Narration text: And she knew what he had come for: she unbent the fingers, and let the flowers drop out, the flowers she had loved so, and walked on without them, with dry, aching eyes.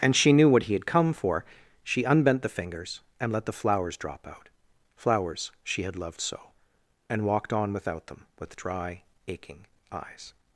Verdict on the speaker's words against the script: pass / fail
fail